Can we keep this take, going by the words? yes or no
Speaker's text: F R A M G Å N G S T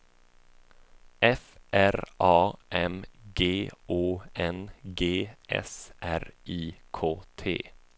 no